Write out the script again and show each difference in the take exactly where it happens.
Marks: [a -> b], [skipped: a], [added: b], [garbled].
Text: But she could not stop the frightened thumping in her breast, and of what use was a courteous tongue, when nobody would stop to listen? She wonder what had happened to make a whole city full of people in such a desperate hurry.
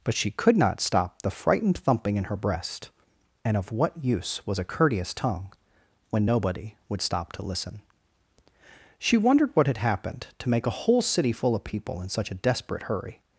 But she could not stop the frightened thumping in her breast, and of what use was a courteous tongue, when nobody would stop to listen? She [wonder -> wondered] what had happened to make a whole city full of people in such a desperate hurry.